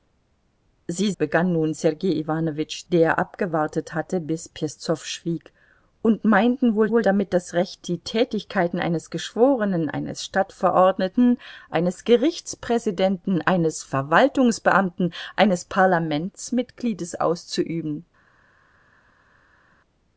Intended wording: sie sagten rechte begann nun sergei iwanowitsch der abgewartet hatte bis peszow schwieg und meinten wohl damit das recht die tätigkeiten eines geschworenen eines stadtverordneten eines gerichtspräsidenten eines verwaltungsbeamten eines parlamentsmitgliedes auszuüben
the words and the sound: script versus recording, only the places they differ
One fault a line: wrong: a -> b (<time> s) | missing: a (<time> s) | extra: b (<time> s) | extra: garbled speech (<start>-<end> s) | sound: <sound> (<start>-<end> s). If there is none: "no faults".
missing: sagten rechte (1.1 s)
extra: wohl (6.9 s)